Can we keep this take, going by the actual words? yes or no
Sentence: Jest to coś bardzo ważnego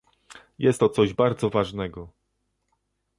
yes